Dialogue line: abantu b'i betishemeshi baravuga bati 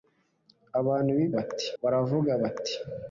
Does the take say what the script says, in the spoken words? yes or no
no